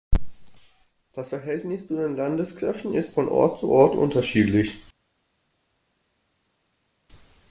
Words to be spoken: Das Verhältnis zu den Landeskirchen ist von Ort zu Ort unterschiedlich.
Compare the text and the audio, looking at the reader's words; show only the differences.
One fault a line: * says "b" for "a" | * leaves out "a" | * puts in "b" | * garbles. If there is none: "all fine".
all fine